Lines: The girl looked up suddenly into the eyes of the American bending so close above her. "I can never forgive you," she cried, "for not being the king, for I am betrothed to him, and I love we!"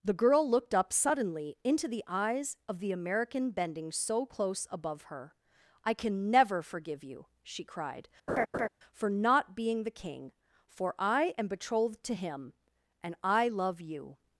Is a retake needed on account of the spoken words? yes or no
yes